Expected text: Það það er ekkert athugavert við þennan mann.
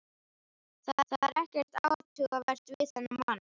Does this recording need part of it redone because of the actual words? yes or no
no